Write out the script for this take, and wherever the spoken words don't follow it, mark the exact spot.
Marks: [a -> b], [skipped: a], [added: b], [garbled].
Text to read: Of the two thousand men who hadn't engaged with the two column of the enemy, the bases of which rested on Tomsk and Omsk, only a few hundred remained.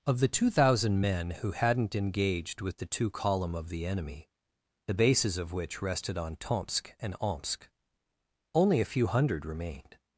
Of the two thousand men who hadn't engaged with the two column of the enemy, the bases of which rested on Tomsk and Omsk, only a few hundred remained.